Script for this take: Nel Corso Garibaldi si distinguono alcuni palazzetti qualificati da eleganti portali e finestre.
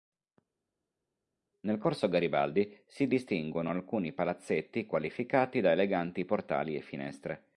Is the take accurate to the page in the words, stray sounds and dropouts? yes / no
yes